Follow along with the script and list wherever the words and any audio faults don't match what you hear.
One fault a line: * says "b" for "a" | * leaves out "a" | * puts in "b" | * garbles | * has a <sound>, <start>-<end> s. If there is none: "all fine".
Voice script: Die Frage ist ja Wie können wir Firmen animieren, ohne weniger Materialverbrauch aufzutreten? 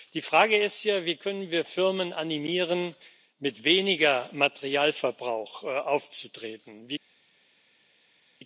* says "mit" for "ohne"